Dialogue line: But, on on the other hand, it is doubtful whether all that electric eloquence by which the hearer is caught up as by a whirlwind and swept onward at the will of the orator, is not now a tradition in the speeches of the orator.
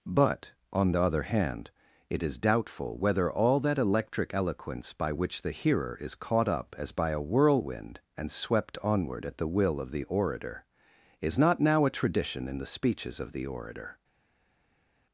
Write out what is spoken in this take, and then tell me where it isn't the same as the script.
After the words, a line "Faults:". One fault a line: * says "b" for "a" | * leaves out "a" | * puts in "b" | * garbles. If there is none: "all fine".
But, on the other hand, it is doubtful whether all that electric eloquence by which the hearer is caught up as by a whirlwind and swept onward at the will of the orator, is not now a tradition in the speeches of the orator.
Faults:
* leaves out "on"